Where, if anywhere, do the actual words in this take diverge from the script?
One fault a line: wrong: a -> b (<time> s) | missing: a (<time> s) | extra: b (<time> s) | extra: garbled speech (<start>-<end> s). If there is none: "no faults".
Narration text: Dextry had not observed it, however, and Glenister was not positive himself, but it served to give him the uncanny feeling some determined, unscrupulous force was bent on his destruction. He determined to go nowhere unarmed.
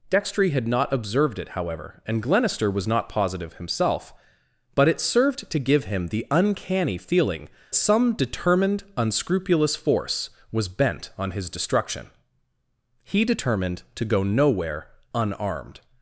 no faults